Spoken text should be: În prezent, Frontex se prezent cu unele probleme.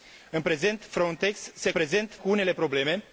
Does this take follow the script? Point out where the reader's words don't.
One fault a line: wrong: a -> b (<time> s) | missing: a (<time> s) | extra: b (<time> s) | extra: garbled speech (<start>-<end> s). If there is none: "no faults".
no faults